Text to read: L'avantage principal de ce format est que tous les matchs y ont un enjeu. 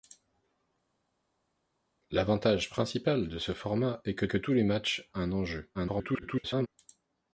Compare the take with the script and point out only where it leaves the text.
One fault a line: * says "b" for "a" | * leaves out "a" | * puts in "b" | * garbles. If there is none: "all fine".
* puts in "que"
* leaves out "y ont"
* garbles